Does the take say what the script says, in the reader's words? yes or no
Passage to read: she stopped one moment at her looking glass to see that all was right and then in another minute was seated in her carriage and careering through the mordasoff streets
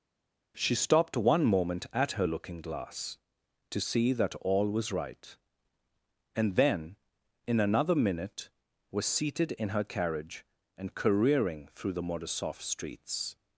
yes